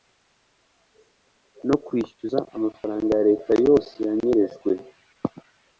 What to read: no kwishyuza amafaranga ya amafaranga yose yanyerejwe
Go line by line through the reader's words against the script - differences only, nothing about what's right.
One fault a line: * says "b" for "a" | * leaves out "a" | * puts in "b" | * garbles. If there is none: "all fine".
* says "leta" for "amafaranga"